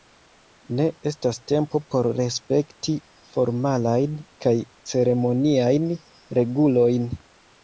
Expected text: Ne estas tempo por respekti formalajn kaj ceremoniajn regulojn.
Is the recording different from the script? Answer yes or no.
no